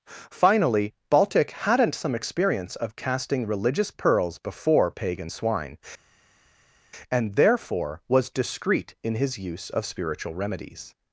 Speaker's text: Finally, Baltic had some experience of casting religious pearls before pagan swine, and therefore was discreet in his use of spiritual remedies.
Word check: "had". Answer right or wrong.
wrong